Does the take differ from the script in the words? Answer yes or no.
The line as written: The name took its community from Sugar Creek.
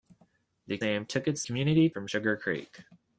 no